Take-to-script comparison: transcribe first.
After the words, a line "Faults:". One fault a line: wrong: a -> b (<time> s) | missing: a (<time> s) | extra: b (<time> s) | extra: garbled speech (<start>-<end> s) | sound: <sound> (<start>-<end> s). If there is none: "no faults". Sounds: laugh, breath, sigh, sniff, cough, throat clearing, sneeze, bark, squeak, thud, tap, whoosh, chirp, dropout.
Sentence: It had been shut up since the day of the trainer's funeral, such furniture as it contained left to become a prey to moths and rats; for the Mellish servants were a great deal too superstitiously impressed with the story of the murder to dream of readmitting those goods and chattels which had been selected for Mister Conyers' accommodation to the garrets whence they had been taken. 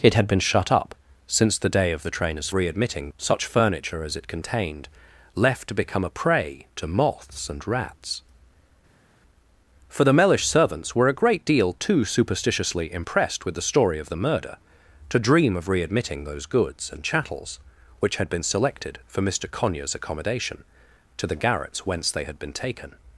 It had been shut up since the day of the trainer's readmitting, such furniture as it contained left to become a prey to moths and rats; for the Mellish servants were a great deal too superstitiously impressed with the story of the murder to dream of readmitting those goods and chattels which had been selected for Mister Conyers' accommodation to the garrets whence they had been taken.
Faults:
wrong: funeral -> readmitting (2.5 s)